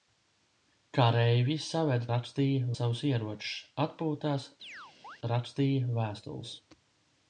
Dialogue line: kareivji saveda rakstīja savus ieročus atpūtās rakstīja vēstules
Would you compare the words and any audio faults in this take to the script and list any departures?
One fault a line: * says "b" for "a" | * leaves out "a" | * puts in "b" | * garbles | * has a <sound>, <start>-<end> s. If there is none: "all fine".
* has a chirp, 4.6-5.2 s